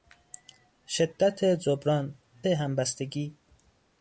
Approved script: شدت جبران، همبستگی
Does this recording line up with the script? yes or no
yes